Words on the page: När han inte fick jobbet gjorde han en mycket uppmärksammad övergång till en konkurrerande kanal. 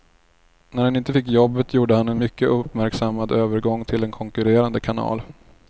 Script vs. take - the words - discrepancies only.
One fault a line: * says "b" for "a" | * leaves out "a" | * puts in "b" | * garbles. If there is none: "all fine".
all fine